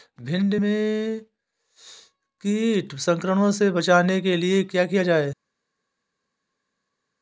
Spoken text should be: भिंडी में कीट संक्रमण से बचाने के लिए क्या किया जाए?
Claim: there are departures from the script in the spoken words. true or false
false